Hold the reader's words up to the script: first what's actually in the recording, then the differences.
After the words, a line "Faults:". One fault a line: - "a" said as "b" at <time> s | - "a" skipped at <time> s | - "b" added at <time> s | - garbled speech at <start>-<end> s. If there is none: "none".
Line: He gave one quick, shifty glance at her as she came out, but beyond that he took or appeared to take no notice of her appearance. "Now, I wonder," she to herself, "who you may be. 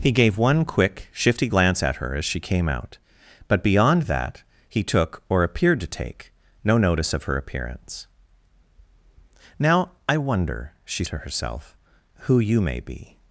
He gave one quick, shifty glance at her as she came out, but beyond that he took or appeared to take no notice of her appearance. "Now, I wonder," she to herself, "who you may be.
Faults:
none